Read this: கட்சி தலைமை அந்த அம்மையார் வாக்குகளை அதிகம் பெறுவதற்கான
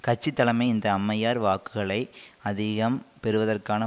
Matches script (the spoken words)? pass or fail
fail